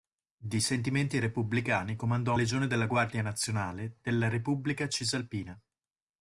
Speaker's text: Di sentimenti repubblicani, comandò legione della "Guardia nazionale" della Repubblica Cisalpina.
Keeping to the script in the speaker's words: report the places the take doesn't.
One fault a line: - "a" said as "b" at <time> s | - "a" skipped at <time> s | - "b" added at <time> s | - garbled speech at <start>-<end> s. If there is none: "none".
none